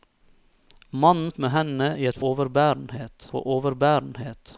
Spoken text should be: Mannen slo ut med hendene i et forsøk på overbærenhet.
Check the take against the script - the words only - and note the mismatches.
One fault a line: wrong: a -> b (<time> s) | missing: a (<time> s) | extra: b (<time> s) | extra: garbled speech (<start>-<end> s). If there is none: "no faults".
missing: slo (1.3 s)
wrong: forsøk -> overbærenhet (2.3 s)